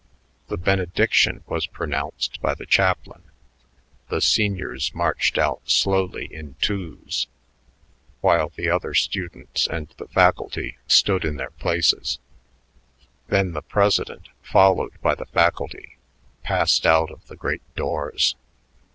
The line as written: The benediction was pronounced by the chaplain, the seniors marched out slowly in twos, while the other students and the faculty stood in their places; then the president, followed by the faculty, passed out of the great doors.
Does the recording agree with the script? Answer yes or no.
yes